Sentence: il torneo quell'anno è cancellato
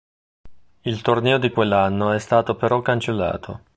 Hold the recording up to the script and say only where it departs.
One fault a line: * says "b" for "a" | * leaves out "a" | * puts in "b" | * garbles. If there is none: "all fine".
* puts in "di"
* puts in "stato però"